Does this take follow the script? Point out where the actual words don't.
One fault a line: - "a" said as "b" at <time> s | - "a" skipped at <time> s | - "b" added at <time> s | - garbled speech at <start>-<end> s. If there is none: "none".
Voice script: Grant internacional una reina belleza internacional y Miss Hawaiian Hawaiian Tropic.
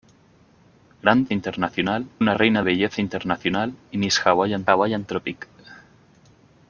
none